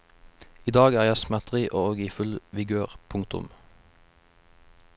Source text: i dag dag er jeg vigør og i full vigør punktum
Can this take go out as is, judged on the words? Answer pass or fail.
fail